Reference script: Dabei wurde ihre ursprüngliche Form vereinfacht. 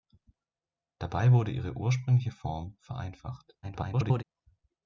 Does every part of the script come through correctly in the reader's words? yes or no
no